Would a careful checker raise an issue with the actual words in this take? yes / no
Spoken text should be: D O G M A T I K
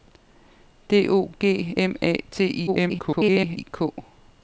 yes